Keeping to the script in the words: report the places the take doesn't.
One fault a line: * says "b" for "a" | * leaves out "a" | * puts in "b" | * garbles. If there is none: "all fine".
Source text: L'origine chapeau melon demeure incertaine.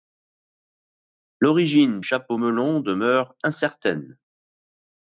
all fine